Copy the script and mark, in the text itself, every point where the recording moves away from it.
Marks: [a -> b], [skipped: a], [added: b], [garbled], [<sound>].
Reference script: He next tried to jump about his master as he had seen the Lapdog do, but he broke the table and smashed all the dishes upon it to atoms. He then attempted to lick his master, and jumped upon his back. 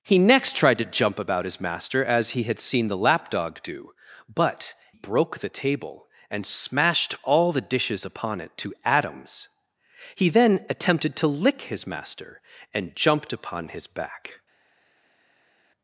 He next tried to jump about his master as he had seen the Lapdog do, but [skipped: he] broke the table and smashed all the dishes upon it to atoms. He then attempted to lick his master, and jumped upon his back.